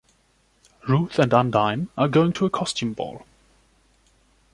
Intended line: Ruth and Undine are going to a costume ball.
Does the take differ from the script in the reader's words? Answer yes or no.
no